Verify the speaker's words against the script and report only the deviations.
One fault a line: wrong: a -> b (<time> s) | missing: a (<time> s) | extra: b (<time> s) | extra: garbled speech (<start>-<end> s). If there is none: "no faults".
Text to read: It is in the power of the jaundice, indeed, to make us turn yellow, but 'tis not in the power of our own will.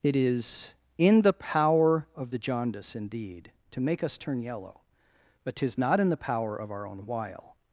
wrong: will -> while (7.0 s)